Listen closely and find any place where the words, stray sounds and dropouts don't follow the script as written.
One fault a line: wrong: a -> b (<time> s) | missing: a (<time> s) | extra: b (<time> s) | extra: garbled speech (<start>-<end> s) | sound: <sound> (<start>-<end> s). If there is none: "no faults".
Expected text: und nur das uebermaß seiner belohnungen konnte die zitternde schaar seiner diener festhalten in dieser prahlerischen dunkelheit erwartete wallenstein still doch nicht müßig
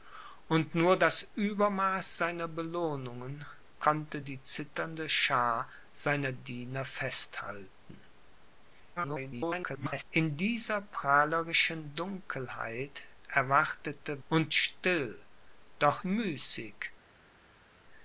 extra: garbled speech (9.0-10.0 s)
wrong: wallenstein -> und (14.3 s)
missing: nicht (16.0 s)